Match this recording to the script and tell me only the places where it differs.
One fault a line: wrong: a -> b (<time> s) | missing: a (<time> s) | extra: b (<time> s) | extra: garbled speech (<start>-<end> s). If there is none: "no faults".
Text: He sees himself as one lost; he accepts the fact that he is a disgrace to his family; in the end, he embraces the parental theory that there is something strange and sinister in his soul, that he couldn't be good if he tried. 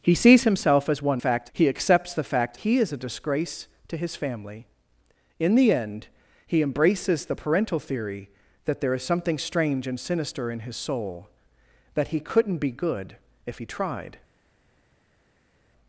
wrong: lost -> fact (1.2 s)
missing: that (2.6 s)